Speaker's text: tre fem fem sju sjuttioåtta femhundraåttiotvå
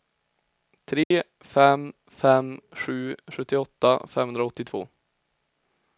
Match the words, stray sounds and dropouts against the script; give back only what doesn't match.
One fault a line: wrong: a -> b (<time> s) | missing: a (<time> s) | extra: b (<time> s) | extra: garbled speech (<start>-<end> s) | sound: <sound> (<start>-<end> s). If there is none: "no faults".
sound: dropout (1.0-1.1 s)